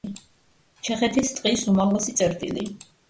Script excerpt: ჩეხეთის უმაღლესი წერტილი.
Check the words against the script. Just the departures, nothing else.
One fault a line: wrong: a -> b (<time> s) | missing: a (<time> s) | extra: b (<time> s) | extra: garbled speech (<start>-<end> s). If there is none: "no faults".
extra: ტყის (1.4 s)